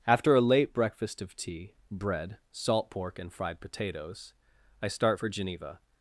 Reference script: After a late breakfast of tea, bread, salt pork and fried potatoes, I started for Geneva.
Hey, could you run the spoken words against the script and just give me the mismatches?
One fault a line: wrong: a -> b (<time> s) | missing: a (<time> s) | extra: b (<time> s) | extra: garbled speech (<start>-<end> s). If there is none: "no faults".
wrong: started -> start (4.9 s)